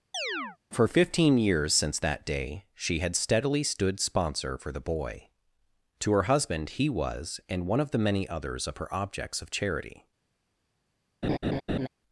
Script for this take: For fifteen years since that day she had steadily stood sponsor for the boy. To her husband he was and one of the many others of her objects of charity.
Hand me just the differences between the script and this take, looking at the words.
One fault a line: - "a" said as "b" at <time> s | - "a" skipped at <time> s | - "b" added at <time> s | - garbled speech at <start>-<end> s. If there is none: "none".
none